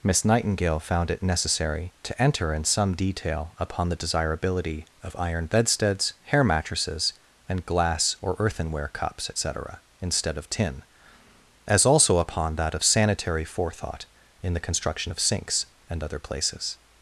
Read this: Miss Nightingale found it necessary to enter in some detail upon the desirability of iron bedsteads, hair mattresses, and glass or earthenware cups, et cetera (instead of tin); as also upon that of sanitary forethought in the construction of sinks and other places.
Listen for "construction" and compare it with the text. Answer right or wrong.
right